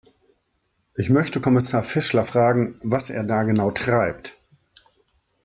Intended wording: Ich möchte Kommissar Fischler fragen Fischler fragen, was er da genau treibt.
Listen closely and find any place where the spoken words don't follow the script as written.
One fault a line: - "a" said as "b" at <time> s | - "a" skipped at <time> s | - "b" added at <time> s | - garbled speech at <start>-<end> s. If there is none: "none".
- "Fischler fragen" skipped at 2.8 s